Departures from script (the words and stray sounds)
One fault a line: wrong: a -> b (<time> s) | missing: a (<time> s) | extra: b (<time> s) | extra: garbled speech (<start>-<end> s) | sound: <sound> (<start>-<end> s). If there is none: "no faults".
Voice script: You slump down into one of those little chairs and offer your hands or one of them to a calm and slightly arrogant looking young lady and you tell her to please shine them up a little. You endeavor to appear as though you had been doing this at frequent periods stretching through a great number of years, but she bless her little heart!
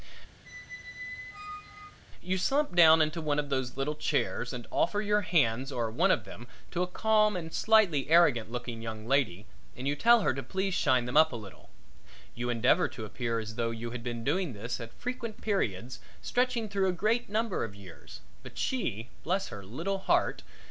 sound: squeak (0.4-2.0 s)